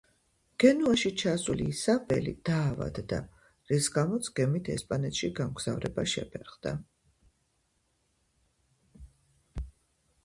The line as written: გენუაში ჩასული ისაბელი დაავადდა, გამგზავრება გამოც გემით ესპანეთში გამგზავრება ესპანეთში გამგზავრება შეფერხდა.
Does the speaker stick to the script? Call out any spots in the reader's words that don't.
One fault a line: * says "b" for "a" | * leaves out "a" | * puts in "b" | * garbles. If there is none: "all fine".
* says "რის" for "გამგზავრება"
* leaves out "ესპანეთში გამგზავრება"